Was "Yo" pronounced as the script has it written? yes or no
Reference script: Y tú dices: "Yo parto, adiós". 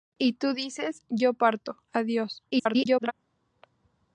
yes